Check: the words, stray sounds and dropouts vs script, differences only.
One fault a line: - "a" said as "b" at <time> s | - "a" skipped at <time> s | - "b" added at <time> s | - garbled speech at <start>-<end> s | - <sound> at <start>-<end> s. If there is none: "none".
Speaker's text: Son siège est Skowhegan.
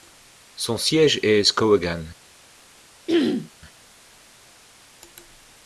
- throat clearing at 3.1-3.5 s